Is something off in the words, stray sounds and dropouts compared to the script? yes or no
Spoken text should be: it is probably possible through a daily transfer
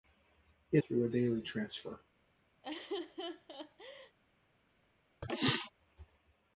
yes